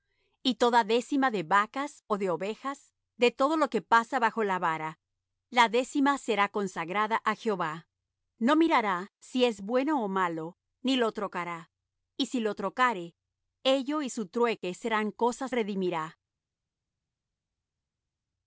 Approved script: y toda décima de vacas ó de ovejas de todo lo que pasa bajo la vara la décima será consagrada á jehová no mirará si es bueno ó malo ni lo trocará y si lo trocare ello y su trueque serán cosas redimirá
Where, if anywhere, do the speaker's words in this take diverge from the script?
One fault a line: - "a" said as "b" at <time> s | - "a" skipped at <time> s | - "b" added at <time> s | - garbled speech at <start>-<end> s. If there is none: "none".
none